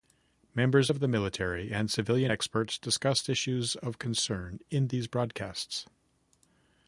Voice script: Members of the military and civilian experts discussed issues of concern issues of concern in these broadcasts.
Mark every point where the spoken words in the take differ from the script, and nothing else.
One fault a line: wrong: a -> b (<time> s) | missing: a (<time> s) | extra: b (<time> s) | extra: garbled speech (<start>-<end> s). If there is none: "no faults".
missing: issues of concern (4.6 s)